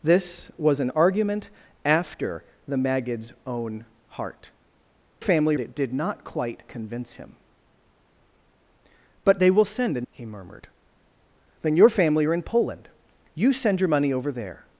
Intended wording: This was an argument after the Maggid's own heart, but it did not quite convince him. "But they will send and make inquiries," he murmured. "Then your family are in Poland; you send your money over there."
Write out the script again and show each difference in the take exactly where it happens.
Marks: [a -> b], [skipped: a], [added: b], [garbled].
This was an argument after the Maggid's own heart, [but -> family] it did not quite convince him. "But they will send and [skipped: make inquiries,"] he murmured. "Then your family are in Poland; you send your money over there."